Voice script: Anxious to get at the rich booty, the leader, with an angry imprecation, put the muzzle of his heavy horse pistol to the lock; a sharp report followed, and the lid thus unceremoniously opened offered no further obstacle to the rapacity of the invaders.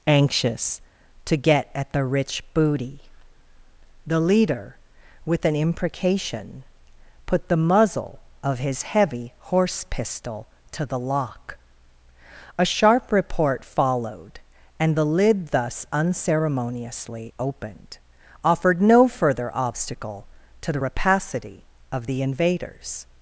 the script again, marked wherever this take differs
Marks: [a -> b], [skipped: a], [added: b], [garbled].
Anxious to get at the rich booty, the leader, with an [skipped: angry] imprecation, put the muzzle of his heavy horse pistol to the lock; a sharp report followed, and the lid thus unceremoniously opened offered no further obstacle to the rapacity of the invaders.